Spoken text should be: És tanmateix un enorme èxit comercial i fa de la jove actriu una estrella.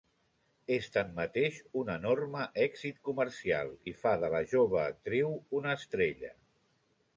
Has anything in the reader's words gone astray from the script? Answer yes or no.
no